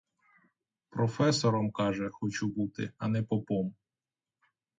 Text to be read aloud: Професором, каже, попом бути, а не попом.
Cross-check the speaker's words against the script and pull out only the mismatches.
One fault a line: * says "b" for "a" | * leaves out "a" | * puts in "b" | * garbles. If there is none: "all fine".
* says "хочу" for "попом"